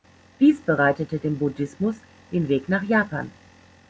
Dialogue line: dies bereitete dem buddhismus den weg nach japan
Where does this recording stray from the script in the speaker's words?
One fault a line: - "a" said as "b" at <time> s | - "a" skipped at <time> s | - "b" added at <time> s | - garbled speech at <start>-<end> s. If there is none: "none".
none